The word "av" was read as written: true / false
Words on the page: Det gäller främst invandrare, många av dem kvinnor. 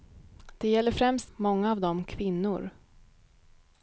true